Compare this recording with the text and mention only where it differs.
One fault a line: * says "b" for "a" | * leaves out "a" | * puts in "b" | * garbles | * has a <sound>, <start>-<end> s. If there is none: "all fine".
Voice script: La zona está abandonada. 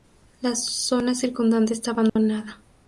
* puts in "circundante"
* has a dropout, 2.1-2.2 s